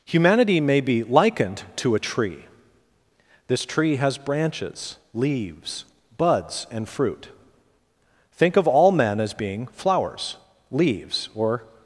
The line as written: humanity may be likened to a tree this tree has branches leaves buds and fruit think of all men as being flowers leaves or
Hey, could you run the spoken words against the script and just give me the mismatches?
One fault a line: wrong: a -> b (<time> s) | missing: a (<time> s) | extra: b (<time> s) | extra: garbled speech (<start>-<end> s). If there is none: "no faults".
no faults